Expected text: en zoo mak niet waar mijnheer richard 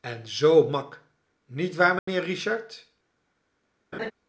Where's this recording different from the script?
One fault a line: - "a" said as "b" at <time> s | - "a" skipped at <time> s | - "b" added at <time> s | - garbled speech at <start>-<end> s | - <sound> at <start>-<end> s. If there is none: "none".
- dropout at 2.0-2.1 s
- laugh at 3.9-4.1 s